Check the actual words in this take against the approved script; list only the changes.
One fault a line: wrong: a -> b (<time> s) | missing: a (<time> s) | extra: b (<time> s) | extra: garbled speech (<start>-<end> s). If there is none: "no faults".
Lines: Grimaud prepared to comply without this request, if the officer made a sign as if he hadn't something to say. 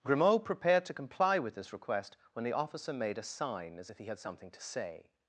wrong: without -> with (1.4 s)
wrong: if -> when (2.3 s)
wrong: hadn't -> had (4.1 s)